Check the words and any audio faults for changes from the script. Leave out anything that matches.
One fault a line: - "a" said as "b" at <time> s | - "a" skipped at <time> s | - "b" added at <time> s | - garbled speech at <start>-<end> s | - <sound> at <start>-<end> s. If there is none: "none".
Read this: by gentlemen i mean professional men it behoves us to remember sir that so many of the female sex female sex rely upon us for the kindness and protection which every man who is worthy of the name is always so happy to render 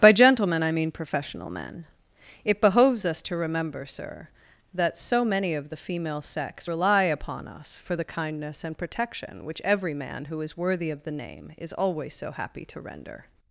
- "female sex" skipped at 6.7 s